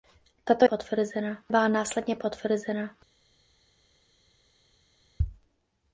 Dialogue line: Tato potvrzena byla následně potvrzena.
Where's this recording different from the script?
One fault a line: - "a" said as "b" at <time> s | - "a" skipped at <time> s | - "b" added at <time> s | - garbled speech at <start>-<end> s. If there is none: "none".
none